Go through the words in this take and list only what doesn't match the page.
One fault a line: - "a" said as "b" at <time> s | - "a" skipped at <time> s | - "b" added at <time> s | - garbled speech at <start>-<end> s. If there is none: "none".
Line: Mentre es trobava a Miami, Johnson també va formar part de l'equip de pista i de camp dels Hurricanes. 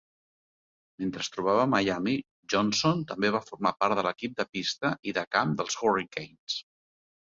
none